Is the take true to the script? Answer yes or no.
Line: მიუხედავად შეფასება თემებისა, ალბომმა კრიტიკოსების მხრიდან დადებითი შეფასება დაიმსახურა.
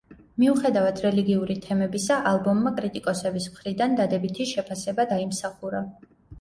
no